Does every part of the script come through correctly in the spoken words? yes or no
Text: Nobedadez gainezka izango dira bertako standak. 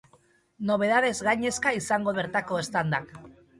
no